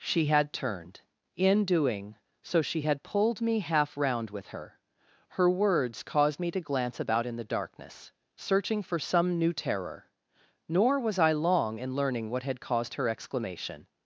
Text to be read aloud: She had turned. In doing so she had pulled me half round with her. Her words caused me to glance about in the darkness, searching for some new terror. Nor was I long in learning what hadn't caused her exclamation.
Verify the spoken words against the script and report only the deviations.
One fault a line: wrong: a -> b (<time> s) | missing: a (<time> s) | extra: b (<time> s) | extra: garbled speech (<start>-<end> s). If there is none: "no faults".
wrong: hadn't -> had (12.4 s)